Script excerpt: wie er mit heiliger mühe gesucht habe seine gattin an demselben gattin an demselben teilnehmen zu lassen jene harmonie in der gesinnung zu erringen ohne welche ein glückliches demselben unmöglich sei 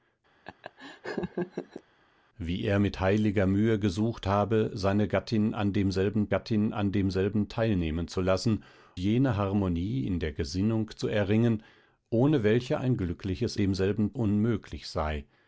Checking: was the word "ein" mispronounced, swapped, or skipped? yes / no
no